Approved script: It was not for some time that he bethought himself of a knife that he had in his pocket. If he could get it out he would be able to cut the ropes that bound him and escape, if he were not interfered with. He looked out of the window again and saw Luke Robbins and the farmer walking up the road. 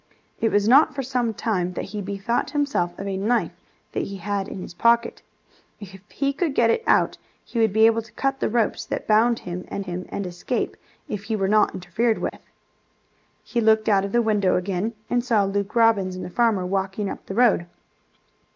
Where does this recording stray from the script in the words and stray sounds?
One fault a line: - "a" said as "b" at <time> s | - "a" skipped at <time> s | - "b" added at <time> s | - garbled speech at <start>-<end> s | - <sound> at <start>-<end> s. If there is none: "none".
- "him and" added at 9.8 s
- dropout at 12.3-12.3 s